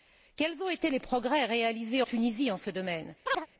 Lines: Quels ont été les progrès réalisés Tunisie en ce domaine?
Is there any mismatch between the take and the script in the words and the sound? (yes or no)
yes